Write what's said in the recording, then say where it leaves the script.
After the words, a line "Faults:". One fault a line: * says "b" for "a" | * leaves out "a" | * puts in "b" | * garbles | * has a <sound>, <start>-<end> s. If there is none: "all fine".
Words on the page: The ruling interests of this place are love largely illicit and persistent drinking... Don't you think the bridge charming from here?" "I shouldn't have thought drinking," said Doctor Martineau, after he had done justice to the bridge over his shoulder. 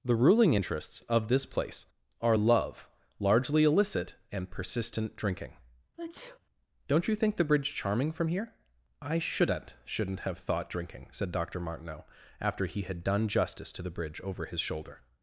The ruling interests of this place are love largely illicit and persistent drinking... Don't you think the bridge charming from here?" "I shouldn't shouldn't have thought drinking," said Doctor Martineau, after he had done justice to the bridge over his shoulder.
Faults:
* has a sneeze, 6.0-6.4 s
* puts in "shouldn't"